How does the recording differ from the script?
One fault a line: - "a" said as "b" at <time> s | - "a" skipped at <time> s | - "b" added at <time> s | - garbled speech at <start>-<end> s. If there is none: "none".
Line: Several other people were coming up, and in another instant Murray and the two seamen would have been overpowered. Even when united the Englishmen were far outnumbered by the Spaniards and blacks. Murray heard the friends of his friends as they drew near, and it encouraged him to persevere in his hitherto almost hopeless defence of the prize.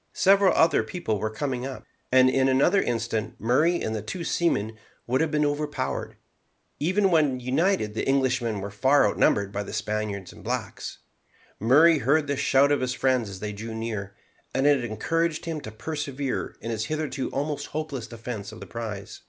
- "friends" said as "shout" at 12.3 s